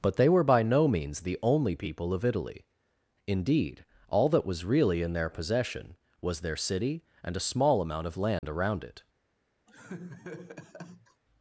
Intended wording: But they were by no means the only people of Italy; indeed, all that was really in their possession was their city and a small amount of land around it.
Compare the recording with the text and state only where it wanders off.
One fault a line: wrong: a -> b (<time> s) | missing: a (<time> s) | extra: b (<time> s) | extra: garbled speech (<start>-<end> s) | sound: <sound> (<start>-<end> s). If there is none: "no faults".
sound: dropout (8.4-8.4 s)
sound: laugh (9.7-11.2 s)